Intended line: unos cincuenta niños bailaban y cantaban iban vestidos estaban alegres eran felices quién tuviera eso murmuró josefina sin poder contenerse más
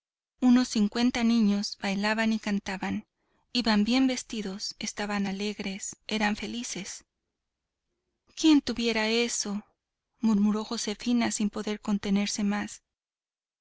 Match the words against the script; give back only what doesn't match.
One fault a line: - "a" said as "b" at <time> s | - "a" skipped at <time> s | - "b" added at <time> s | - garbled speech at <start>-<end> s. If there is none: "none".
- "bien" added at 3.8 s